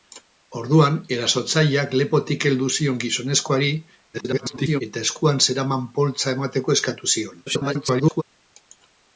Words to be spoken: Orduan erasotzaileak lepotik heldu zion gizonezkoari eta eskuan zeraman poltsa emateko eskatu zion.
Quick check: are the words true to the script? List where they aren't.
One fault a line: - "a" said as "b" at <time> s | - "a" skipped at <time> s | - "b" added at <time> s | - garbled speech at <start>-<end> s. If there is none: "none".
- garbled speech at 4.1-4.8 s
- garbled speech at 7.4-8.2 s